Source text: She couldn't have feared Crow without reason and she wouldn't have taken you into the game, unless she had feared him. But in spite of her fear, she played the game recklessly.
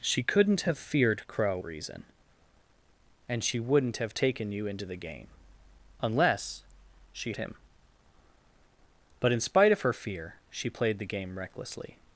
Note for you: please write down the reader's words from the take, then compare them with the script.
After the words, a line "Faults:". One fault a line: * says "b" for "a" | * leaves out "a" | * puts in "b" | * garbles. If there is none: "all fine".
She couldn't have feared Crow reason and she wouldn't have taken you into the game, unless she him. But in spite of her fear, she played the game recklessly.
Faults:
* leaves out "without"
* leaves out "had feared"